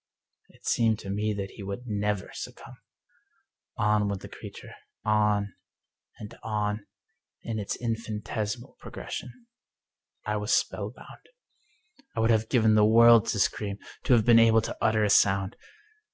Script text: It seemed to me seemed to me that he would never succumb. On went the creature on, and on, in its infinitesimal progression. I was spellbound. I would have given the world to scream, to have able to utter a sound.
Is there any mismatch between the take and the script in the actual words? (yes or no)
yes